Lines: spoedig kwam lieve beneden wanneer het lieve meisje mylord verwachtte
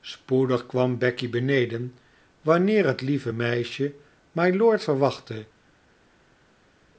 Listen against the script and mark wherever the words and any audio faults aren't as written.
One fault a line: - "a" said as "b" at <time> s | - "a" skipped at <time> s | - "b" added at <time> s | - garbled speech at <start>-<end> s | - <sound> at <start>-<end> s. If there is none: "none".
- "lieve" said as "becky" at 1.0 s